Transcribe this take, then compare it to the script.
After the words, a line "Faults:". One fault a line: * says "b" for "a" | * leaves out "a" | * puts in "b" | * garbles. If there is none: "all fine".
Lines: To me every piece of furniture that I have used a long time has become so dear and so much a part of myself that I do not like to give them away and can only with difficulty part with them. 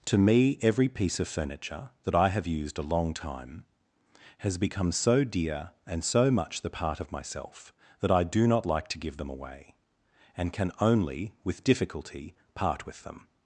To me every piece of furniture that I have used a long time has become so dear and so much the part of myself that I do not like to give them away and can only with difficulty part with them.
Faults:
* says "the" for "a"